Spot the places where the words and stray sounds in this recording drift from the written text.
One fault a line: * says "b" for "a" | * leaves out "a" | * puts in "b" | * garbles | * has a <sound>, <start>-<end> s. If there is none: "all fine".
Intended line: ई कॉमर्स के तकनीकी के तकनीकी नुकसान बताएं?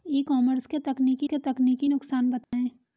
* has a dropout, 2.4-2.5 s